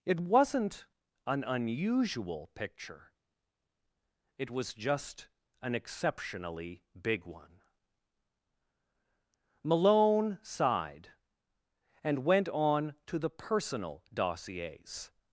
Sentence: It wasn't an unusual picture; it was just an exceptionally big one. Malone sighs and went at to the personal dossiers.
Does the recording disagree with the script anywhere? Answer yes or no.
yes